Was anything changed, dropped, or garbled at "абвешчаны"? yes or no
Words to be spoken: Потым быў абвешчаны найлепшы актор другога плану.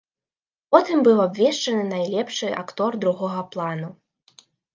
no